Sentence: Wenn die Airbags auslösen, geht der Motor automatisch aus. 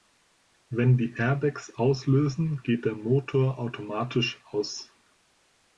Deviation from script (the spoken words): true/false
false